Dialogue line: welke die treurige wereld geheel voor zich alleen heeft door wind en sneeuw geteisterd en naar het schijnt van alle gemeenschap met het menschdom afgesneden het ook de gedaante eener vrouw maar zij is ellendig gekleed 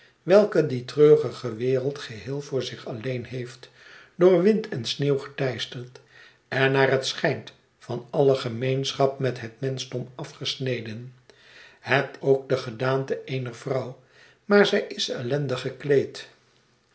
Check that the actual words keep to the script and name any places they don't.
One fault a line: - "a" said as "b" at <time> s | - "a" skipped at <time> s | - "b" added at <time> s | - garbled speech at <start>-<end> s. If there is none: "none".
none